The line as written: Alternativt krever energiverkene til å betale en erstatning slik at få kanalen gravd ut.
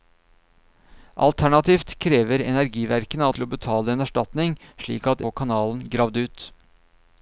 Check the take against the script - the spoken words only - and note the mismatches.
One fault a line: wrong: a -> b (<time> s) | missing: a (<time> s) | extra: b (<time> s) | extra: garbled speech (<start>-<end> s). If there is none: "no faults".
no faults